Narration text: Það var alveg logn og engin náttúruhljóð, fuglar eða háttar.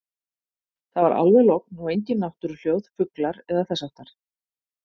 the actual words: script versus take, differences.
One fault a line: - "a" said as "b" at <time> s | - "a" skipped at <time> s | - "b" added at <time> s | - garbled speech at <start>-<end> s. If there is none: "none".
- "þess" added at 3.7 s